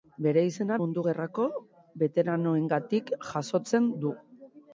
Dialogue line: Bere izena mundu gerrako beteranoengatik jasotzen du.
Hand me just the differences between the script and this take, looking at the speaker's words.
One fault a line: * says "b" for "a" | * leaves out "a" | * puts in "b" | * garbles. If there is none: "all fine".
all fine